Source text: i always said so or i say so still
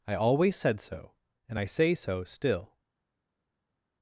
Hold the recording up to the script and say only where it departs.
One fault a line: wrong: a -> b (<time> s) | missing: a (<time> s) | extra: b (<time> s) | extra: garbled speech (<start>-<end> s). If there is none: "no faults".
wrong: or -> and (1.5 s)